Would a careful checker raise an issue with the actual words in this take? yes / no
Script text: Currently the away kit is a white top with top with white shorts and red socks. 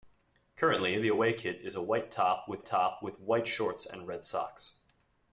no